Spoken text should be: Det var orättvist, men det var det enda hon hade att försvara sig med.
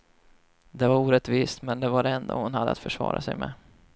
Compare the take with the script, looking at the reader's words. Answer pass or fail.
pass